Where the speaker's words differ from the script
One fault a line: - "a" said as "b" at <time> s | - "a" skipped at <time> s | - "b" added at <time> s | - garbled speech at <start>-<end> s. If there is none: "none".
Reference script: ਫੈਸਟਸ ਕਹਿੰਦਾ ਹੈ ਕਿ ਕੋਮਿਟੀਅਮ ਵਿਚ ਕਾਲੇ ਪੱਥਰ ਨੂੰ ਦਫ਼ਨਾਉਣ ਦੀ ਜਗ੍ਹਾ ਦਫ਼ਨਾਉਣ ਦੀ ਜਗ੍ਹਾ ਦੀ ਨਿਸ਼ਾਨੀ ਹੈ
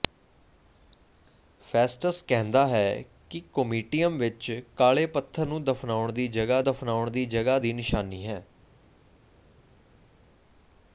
none